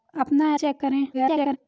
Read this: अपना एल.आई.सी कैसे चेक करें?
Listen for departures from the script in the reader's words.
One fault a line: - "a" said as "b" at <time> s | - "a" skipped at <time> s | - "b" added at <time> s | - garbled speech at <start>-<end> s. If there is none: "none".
- "एल.आई.सी कैसे" skipped at 0.5 s
- garbled speech at 1.1-1.6 s